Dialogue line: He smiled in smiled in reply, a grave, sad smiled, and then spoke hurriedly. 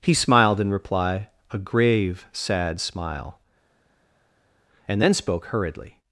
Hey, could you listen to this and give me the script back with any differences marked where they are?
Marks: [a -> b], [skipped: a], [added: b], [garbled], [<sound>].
He smiled in [skipped: smiled in] reply, a grave, sad [smiled, -> smile] and then spoke hurriedly.